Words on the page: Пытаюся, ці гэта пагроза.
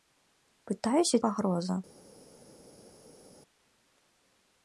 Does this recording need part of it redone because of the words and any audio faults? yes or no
yes